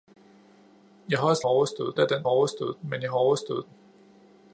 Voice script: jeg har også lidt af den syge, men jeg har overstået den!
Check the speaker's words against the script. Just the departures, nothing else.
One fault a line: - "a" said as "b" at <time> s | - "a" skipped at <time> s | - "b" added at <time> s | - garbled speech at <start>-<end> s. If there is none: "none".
- "lidt" said as "overstået" at 1.5 s
- "syge" said as "overstået" at 2.3 s